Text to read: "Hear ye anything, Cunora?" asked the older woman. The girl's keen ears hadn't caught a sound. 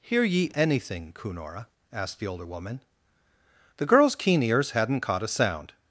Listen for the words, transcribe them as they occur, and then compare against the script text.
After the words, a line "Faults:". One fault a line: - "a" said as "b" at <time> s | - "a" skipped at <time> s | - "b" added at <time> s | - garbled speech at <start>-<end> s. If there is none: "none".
"Hear ye anything, Cunora?" asked the older woman. The girl's keen ears hadn't caught a sound.
Faults:
none